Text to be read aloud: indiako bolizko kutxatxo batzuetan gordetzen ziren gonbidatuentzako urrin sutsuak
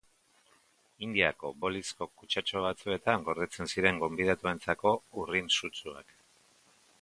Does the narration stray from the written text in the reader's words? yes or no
no